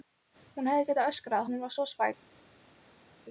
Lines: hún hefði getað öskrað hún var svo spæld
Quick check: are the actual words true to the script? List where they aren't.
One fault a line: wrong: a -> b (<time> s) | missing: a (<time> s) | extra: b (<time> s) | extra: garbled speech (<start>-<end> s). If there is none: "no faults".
no faults